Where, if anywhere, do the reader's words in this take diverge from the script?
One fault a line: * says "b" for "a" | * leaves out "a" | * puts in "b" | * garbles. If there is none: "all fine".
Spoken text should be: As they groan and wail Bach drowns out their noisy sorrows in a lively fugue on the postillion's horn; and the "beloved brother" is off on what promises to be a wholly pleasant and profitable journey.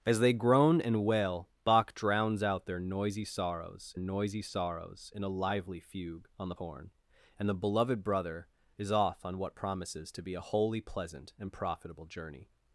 * puts in "noisy sorrows"
* leaves out "postillion's"